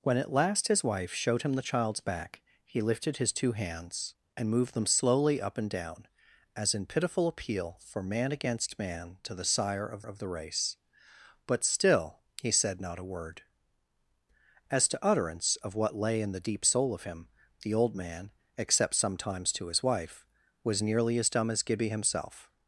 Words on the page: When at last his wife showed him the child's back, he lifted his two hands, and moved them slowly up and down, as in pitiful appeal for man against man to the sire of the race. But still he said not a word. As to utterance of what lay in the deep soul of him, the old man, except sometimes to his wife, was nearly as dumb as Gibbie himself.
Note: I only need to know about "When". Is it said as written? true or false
true